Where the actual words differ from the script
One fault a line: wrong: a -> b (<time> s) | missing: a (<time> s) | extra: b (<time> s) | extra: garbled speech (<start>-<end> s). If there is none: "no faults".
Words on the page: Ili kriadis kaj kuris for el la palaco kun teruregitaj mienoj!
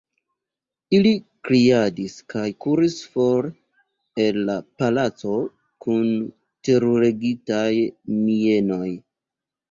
no faults